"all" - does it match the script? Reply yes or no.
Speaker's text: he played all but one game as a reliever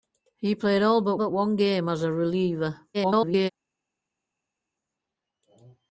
yes